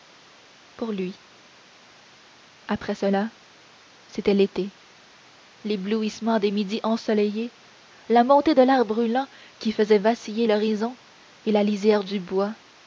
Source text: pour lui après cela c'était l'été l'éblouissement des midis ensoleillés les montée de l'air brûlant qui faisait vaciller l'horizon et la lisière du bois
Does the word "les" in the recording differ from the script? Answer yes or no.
yes